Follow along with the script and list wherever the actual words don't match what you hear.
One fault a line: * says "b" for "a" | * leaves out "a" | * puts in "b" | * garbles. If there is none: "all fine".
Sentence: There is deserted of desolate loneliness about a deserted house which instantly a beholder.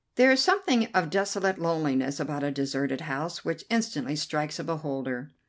* says "something" for "deserted"
* puts in "strikes"